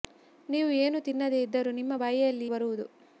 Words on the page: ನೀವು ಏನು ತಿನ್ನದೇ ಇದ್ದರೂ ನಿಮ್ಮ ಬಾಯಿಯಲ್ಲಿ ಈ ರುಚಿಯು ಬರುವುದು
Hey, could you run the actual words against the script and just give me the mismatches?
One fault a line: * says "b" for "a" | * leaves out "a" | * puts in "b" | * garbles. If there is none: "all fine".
* leaves out "ಈ ರುಚಿಯು"